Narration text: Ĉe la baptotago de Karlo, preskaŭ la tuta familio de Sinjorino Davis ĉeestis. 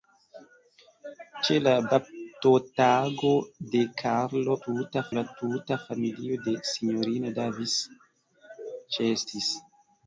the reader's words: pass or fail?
fail